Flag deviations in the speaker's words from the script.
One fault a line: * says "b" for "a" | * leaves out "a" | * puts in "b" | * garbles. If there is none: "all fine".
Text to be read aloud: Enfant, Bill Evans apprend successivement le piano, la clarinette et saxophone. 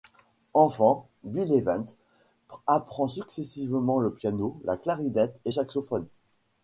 all fine